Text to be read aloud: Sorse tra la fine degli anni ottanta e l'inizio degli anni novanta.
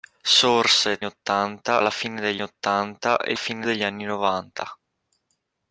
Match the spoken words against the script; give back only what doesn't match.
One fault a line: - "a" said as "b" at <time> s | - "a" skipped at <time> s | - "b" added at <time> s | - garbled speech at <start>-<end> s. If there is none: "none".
- "tra" said as "ottanta" at 1.0 s
- "anni" skipped at 2.4 s
- "l'inizio" said as "fine" at 3.3 s